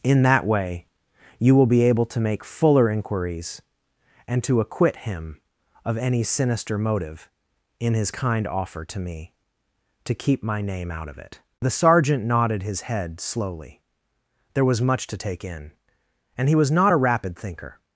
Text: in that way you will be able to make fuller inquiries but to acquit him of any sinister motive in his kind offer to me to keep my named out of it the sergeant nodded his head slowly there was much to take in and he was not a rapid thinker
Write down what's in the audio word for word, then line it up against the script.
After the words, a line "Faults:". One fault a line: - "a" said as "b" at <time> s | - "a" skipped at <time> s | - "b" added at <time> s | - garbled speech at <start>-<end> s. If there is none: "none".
in that way you will be able to make fuller inquiries and to acquit him of any sinister motive in his kind offer to me to keep my name out of it the sergeant nodded his head slowly there was much to take in and he was not a rapid thinker
Faults:
- "but" said as "and" at 4.3 s
- "named" said as "name" at 10.6 s